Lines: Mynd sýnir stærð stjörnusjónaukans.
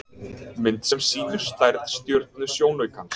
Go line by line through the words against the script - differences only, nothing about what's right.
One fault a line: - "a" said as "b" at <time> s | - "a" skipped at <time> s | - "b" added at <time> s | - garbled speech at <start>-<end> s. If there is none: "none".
- "sem" added at 0.9 s